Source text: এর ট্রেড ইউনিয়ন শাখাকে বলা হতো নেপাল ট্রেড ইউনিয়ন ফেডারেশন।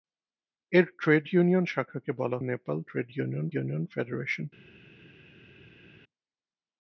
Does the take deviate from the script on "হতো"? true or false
true